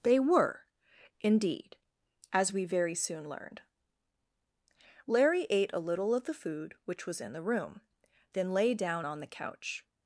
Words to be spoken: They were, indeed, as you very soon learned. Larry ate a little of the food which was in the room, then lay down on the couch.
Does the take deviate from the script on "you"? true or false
true